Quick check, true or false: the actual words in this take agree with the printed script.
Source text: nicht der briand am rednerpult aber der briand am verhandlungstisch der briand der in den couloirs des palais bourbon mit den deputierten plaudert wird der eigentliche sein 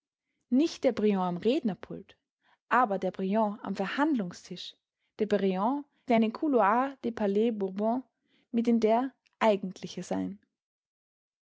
false